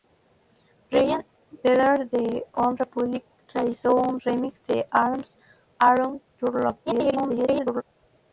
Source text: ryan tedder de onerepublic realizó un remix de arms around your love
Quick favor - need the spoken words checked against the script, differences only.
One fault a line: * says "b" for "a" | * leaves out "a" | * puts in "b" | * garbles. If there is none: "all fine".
* garbles